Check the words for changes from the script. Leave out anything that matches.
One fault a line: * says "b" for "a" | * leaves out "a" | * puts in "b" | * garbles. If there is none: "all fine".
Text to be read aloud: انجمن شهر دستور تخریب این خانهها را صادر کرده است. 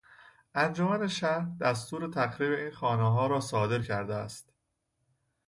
all fine